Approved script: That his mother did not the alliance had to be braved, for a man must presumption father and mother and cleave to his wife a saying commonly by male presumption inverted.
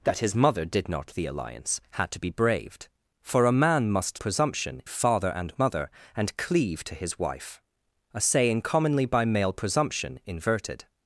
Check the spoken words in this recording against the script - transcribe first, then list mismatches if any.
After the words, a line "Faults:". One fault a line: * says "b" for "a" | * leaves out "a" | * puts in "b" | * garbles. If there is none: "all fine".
That his mother did not the alliance had to be braved, for a man must presumption father and mother and cleave to his wife a saying commonly by male presumption inverted.
Faults:
all fine